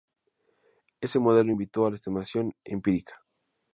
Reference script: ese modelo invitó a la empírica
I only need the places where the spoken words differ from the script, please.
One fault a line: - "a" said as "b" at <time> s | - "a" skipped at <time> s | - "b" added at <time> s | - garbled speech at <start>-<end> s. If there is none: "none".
- "estimación" added at 2.0 s